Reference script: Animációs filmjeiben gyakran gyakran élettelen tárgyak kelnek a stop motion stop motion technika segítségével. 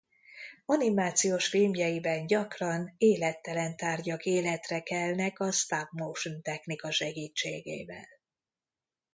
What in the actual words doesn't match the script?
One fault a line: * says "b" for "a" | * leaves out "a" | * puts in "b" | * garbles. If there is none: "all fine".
* leaves out "gyakran"
* puts in "életre"
* leaves out "stop motion"